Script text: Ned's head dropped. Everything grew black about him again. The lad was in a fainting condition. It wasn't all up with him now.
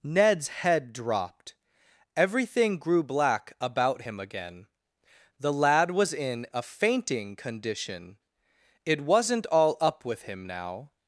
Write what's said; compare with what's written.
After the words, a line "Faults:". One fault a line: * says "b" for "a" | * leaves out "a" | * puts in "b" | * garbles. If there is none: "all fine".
Ned's head dropped. Everything grew black about him again. The lad was in a fainting condition. It wasn't all up with him now.
Faults:
all fine